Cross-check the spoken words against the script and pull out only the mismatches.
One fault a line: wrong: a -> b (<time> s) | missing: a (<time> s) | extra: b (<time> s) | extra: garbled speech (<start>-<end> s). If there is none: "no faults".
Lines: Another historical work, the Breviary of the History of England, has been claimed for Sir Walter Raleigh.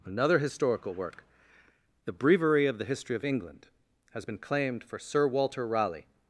no faults